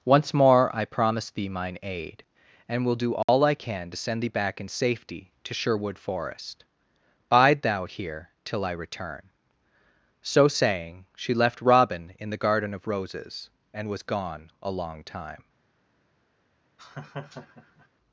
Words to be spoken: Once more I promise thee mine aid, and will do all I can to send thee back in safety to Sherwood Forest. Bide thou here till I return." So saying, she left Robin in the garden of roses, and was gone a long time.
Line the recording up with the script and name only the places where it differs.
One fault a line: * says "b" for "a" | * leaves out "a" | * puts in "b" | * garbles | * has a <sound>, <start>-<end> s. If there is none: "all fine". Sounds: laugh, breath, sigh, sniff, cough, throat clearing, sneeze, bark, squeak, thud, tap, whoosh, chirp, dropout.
* has a dropout, 3.2-3.3 s
* has a laugh, 16.8-17.9 s